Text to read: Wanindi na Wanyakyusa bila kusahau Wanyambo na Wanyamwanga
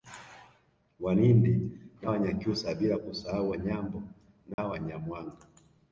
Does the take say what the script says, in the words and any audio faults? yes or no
no